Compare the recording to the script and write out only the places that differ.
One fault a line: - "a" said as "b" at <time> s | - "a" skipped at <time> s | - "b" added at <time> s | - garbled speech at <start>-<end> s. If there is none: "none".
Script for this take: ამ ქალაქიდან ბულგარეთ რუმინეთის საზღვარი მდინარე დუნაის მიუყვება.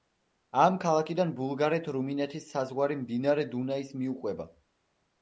none